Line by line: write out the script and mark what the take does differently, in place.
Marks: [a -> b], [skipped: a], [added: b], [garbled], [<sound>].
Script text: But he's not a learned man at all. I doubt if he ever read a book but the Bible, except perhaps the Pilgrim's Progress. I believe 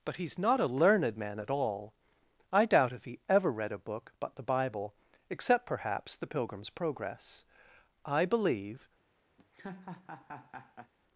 But he's not a learned man at all. I doubt if he ever read a book but the Bible, except perhaps the Pilgrim's Progress. I believe [laugh]